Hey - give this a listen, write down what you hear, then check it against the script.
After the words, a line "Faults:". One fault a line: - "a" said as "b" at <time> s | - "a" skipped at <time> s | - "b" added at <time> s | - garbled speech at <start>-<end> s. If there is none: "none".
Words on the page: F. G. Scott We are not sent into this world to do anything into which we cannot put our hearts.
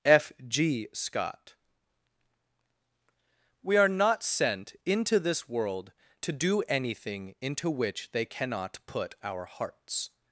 F. G. Scott We are not sent into this world to do anything into which they cannot put our hearts.
Faults:
- "we" said as "they" at 8.1 s